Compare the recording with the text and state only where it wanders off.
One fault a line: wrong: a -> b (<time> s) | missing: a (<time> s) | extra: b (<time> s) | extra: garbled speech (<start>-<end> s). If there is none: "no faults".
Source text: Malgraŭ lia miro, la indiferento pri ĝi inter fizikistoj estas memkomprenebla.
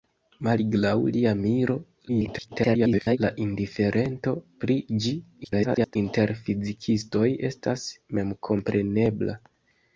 extra: garbled speech (2.1-3.2 s)
extra: garbled speech (5.4-6.0 s)